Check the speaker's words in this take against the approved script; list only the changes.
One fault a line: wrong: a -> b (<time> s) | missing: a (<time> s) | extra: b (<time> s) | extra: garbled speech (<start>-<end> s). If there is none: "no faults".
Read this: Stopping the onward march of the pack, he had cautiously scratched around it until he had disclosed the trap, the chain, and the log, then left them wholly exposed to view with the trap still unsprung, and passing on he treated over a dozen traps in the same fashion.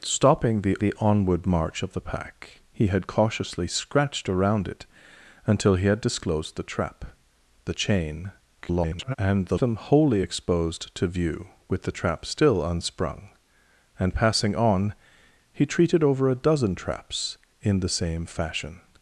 extra: the (0.8 s)
extra: garbled speech (8.6-9.2 s)
missing: log then left (9.6 s)